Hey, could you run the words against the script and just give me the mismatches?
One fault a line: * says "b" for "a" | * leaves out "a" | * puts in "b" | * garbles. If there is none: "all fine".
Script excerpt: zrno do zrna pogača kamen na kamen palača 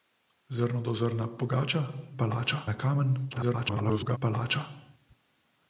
* says "palača" for "kamen"
* garbles